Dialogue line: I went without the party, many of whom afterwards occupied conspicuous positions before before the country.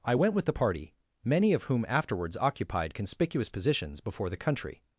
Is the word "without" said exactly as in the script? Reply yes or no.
no